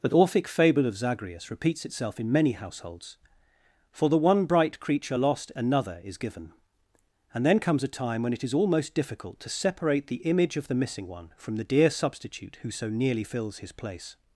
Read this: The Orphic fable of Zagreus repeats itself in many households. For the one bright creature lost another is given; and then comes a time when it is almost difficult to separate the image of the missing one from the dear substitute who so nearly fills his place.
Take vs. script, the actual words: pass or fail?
pass